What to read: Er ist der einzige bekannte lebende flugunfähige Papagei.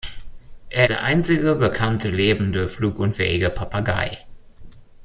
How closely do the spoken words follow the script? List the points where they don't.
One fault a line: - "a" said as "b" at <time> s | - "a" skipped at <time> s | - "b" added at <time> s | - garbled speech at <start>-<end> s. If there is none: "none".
- "ist" skipped at 0.9 s